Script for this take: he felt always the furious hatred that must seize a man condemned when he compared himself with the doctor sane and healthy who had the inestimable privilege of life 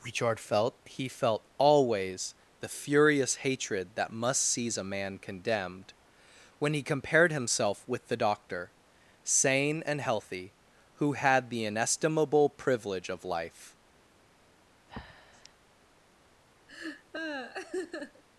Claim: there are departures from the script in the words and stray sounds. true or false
true